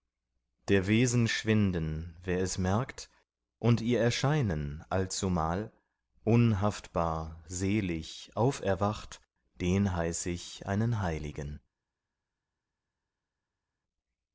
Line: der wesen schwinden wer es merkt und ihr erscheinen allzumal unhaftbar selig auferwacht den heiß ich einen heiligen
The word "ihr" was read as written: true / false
true